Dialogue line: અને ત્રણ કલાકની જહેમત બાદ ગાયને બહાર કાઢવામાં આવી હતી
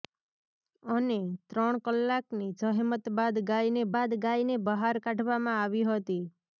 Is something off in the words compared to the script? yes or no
yes